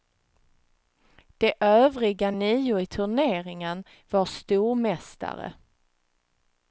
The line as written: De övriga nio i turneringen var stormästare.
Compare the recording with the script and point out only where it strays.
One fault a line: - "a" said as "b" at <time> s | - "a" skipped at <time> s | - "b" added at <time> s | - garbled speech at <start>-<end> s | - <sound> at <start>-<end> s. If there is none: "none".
none